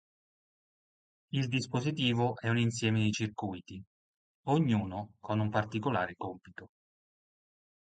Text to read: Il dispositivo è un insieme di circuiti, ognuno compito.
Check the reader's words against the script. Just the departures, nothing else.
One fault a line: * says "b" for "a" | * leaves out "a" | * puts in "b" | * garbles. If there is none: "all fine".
* puts in "con un particolare"